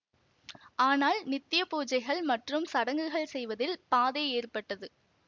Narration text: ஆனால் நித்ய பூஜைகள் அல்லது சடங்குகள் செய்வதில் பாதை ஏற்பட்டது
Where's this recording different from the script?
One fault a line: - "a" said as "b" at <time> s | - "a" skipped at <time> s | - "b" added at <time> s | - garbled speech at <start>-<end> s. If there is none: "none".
- "அல்லது" said as "மற்றும்" at 2.2 s